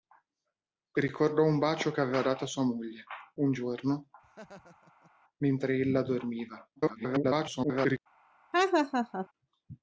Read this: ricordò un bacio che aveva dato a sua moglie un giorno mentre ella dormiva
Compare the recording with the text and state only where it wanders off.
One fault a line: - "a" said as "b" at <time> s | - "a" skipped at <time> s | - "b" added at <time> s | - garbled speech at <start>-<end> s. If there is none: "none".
- garbled speech at 6.8-8.0 s